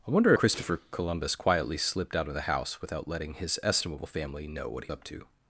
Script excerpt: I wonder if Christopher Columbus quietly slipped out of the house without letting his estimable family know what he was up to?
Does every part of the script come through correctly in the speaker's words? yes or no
no